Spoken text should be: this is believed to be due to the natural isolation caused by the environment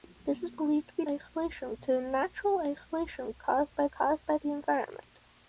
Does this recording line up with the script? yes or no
no